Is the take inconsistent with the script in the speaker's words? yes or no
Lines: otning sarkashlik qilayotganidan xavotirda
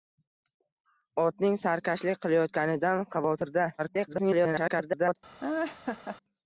yes